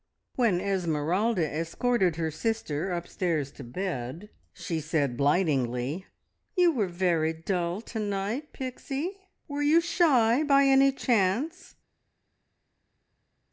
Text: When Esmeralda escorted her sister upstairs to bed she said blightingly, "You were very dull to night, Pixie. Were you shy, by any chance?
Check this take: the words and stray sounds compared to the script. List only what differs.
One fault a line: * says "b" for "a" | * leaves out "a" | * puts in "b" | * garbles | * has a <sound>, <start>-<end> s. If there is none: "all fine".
all fine